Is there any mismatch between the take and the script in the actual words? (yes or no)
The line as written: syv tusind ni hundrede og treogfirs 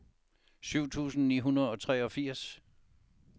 no